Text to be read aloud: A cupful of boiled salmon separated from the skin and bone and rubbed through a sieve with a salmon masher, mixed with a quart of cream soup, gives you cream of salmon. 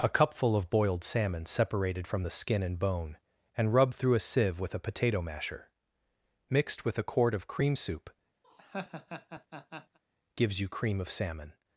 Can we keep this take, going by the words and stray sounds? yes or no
no